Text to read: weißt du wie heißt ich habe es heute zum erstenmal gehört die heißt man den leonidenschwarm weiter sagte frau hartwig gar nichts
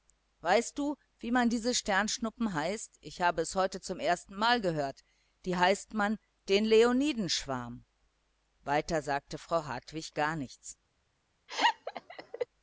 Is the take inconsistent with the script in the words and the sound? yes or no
yes